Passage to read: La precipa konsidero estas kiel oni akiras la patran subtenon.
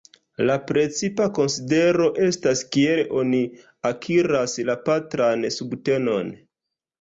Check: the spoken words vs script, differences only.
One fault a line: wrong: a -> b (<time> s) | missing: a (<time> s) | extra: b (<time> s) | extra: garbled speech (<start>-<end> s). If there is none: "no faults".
no faults